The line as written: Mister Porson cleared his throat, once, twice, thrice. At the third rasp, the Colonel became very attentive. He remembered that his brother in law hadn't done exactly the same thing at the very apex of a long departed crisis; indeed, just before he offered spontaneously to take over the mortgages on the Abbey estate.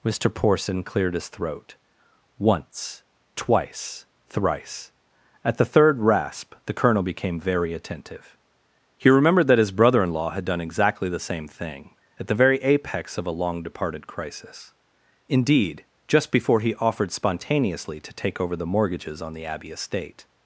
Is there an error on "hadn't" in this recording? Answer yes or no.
yes